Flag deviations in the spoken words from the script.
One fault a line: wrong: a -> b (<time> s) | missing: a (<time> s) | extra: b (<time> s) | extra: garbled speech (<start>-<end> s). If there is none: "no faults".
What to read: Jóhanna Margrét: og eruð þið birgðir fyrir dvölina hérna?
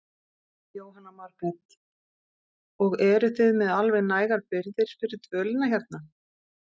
extra: með alveg nægar (3.6 s)